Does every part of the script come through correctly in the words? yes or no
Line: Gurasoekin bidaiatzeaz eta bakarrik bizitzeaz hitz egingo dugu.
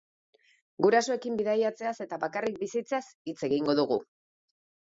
yes